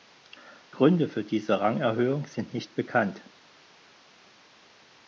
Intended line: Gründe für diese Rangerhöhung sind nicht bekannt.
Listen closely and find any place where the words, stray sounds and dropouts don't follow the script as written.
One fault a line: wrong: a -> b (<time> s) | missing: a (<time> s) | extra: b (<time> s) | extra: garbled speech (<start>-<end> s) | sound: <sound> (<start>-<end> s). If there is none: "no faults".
no faults